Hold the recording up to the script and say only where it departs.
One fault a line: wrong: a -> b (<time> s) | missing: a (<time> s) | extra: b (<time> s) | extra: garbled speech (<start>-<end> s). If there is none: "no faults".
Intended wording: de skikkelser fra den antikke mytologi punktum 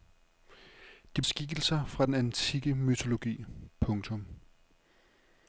no faults